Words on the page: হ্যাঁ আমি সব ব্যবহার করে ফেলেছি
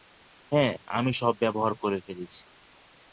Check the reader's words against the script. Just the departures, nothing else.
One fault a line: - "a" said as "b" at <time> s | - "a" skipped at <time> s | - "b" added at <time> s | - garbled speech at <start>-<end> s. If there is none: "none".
none